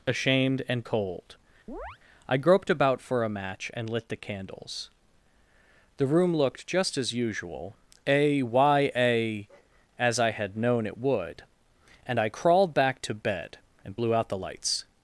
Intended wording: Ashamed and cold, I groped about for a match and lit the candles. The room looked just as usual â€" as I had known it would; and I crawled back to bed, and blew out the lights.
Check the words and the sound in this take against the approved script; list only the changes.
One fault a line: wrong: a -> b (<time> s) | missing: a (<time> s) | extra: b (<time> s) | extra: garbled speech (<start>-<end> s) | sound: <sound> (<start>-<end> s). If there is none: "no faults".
sound: chirp (1.7-2.0 s)
wrong: â -> a y a (8.1 s)